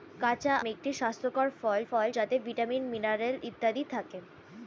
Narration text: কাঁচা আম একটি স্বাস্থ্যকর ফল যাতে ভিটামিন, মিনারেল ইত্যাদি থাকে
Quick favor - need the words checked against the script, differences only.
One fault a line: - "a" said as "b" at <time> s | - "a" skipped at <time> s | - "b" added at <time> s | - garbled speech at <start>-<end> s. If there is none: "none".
- "আম" skipped at 0.5 s
- "ফল" added at 1.9 s